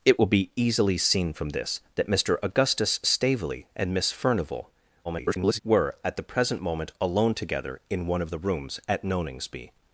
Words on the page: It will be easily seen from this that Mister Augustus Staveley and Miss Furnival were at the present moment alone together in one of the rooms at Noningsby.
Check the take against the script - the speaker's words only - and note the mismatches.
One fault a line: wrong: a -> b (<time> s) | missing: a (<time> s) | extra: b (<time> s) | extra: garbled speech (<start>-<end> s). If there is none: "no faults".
extra: garbled speech (5.0-5.6 s)